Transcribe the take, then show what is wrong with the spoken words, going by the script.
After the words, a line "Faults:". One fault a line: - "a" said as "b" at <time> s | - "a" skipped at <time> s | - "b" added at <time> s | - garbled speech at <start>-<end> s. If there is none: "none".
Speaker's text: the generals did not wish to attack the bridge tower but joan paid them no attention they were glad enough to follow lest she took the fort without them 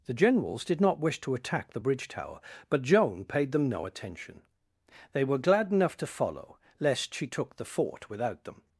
the generals did not wish to attack the bridge tower but joan paid them no attention they were glad enough to follow lest she took the fort without them
Faults:
none